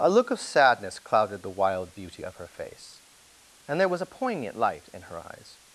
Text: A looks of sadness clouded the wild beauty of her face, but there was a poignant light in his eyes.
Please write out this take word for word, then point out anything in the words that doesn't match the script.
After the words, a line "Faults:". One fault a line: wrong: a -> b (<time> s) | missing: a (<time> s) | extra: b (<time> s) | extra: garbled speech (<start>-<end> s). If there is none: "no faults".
A look of sadness clouded the wild beauty of her face, and there was a poignant light in her eyes.
Faults:
wrong: looks -> look (0.1 s)
wrong: but -> and (3.7 s)
wrong: his -> her (5.0 s)